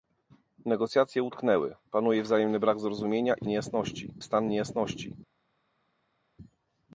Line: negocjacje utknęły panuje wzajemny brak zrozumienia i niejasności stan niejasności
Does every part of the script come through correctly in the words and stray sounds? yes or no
yes